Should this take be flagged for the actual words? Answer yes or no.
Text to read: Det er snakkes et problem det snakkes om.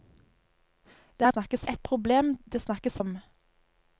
no